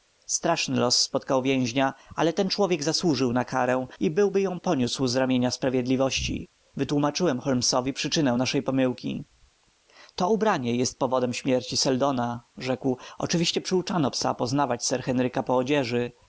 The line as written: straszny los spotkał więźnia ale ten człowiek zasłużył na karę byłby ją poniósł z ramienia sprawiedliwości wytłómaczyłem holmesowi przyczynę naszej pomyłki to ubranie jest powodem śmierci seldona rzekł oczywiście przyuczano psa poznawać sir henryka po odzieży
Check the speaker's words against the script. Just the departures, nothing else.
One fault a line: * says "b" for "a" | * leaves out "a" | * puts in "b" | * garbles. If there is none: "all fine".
* puts in "i"